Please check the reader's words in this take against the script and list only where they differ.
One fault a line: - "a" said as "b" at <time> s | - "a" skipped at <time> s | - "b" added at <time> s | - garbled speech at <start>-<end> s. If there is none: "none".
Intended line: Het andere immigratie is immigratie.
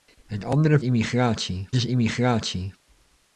none